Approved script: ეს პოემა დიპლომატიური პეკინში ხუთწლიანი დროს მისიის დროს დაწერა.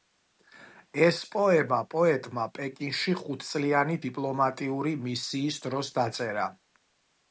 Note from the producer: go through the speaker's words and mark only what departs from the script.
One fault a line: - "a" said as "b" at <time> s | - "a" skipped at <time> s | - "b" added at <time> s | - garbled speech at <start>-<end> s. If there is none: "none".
- "დიპლომატიური" said as "პოეტმა" at 1.9 s
- "დროს" said as "დიპლომატიური" at 4.1 s